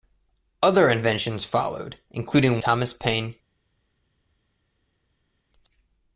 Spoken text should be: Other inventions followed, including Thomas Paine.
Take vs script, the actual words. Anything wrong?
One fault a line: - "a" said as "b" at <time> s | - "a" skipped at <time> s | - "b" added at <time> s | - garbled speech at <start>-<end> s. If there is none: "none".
none